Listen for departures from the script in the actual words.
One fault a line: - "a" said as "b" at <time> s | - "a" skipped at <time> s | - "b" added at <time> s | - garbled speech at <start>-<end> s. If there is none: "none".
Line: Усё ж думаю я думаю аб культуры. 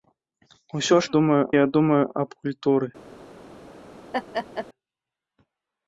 none